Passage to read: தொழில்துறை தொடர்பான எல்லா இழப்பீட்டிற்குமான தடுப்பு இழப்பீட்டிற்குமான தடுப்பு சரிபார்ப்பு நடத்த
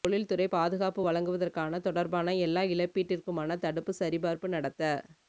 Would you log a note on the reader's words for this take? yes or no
yes